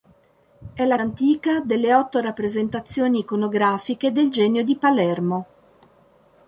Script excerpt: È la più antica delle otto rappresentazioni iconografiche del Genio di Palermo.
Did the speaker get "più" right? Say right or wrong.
wrong